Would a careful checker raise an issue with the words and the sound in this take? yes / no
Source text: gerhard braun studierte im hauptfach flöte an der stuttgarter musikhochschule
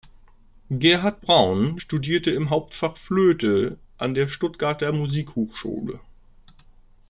no